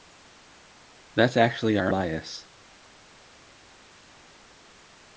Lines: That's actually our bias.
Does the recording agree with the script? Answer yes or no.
yes